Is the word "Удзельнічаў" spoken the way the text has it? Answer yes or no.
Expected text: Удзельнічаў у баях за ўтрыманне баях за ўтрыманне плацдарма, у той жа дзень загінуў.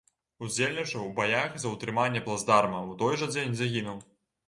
yes